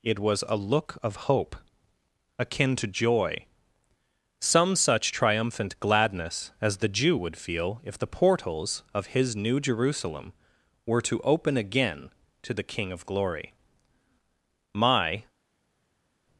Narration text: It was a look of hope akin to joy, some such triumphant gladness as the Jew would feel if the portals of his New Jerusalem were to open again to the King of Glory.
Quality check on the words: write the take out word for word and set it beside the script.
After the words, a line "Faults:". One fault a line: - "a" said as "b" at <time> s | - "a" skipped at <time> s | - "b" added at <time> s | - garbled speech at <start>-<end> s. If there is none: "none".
It was a look of hope akin to joy, some such triumphant gladness as the Jew would feel if the portals of his New Jerusalem were to open again to the King of Glory. My
Faults:
- "My" added at 14.7 s